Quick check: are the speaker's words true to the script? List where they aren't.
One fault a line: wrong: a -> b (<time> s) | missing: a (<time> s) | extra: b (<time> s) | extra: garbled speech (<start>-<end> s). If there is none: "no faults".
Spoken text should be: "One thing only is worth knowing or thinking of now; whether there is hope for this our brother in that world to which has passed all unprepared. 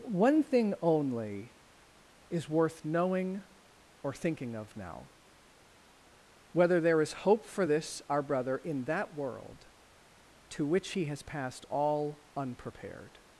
extra: he (10.9 s)